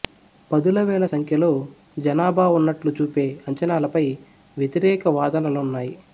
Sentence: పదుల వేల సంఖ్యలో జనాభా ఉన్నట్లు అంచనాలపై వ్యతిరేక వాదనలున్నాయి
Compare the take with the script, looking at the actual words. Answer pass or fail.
fail